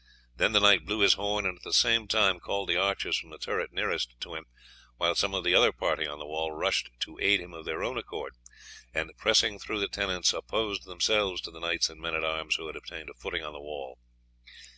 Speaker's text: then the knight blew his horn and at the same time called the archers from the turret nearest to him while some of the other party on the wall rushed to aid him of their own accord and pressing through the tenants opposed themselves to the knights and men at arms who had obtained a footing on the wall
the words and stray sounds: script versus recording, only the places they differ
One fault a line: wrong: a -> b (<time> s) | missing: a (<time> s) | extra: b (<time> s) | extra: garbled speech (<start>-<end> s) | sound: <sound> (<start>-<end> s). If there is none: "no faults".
no faults